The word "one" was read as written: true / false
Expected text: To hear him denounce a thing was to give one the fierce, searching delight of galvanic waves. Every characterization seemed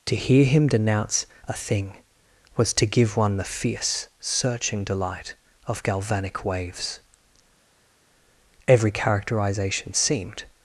true